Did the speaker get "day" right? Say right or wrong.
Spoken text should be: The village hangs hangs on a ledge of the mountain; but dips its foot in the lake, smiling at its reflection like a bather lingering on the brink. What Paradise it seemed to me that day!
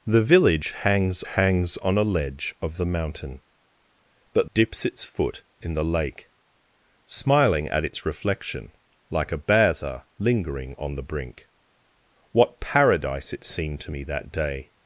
right